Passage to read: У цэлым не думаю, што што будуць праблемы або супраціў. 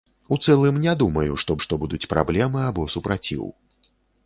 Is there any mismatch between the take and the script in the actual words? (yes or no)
no